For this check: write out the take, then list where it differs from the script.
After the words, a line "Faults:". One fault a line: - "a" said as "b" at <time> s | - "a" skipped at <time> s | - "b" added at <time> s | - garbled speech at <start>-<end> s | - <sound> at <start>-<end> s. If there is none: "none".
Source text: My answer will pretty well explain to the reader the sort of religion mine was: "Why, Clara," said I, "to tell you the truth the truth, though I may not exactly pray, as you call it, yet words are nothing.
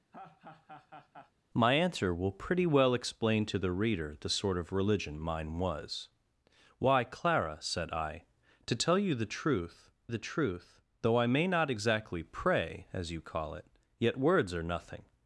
My answer will pretty well explain to the reader the sort of religion mine was: "Why, Clara," said I, "to tell you the truth the truth, though I may not exactly pray, as you call it, yet words are nothing.
Faults:
- laugh at 0.1-1.3 s